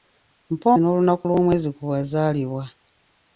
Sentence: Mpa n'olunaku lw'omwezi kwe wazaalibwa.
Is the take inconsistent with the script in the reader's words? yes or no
no